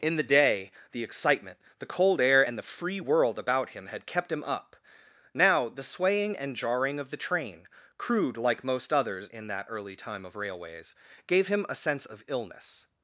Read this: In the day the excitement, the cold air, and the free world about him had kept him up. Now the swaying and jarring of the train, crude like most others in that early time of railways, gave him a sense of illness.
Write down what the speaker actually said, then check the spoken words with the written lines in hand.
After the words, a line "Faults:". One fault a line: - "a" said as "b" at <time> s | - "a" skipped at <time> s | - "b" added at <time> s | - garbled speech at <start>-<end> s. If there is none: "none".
In the day the excitement, the cold air, and the free world about him had kept him up. Now the swaying and jarring of the train, crude like most others in that early time of railways, gave him a sense of illness.
Faults:
none